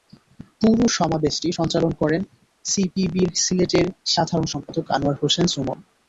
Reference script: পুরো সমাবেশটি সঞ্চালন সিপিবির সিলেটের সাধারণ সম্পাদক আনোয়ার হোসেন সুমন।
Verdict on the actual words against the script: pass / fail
fail